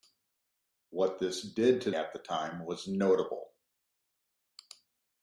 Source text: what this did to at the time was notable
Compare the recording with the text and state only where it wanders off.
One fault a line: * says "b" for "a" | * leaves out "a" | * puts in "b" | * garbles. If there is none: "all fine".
all fine